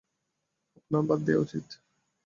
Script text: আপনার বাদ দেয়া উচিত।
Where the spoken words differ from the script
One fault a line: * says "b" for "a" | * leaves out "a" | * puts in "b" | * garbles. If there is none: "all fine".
all fine